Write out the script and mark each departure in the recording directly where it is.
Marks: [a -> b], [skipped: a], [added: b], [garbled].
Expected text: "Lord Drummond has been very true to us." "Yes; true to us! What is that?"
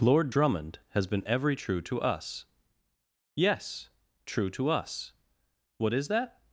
"Lord Drummond has been [very -> every] true to us." "Yes; true to us! What is that?"